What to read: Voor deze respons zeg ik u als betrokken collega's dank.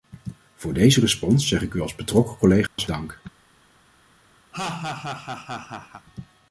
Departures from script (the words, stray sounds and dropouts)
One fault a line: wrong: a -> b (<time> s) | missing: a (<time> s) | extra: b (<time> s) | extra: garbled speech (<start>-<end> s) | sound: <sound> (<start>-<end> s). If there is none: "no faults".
sound: dropout (2.7-2.8 s)
sound: laugh (4.5-6.1 s)